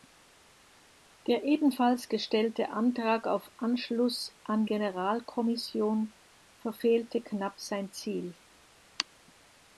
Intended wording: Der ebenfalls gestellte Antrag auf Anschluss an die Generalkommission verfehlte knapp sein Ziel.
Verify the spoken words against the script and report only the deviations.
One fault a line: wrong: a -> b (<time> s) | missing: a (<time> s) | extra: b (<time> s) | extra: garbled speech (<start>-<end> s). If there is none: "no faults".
missing: die (4.7 s)